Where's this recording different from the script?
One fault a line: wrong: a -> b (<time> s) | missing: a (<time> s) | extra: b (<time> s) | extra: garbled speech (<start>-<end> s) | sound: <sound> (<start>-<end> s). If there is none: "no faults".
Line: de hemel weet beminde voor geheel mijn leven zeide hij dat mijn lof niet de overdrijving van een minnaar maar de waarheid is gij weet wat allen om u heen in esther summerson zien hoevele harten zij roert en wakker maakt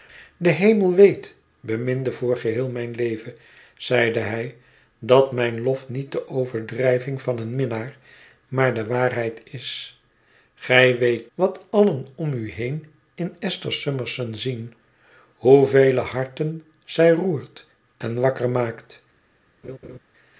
sound: laugh (19.6-20.0 s)